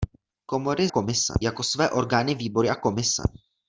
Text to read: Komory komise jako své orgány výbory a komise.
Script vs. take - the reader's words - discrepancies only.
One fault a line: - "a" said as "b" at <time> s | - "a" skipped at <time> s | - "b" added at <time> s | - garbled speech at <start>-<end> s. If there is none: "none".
none